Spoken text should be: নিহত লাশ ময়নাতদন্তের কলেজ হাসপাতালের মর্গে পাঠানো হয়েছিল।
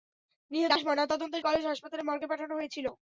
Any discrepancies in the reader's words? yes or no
no